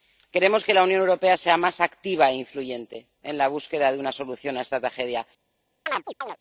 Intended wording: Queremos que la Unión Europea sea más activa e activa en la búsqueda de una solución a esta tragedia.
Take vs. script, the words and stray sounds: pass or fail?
fail